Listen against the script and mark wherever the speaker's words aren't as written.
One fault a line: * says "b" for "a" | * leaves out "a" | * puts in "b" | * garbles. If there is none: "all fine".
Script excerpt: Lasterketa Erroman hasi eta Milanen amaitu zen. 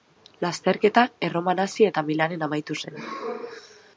all fine